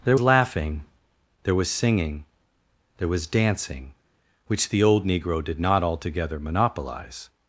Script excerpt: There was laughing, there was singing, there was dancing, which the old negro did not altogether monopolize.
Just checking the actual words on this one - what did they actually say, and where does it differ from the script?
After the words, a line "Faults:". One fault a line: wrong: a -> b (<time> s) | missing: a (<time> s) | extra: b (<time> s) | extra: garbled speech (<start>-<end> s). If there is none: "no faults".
There laughing, there was singing, there was dancing, which the old negro did not altogether monopolize.
Faults:
missing: was (0.2 s)